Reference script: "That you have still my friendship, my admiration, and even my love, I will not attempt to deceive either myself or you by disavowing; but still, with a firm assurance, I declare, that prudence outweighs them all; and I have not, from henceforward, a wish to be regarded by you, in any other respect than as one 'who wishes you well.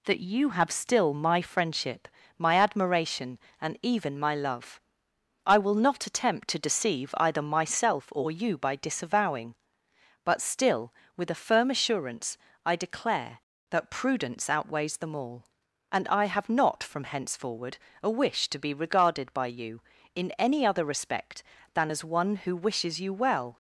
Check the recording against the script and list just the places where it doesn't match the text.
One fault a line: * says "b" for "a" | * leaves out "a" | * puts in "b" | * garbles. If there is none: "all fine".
all fine